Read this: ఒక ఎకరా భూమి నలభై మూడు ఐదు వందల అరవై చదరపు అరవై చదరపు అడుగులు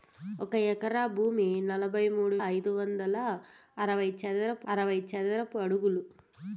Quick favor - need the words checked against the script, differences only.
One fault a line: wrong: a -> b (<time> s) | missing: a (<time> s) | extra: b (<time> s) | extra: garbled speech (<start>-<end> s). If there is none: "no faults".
no faults